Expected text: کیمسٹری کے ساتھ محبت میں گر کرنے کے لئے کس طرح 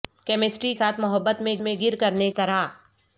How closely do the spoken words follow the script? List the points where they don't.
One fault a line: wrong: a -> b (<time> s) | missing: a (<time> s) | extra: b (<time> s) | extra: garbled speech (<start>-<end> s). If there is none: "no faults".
missing: کے (0.7 s)
extra: میں (1.6 s)
missing: کے لئے کس (2.3 s)